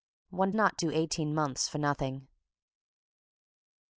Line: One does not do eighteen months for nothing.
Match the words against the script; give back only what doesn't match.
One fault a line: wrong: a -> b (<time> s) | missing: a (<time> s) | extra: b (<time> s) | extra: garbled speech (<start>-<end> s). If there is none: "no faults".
missing: does (0.5 s)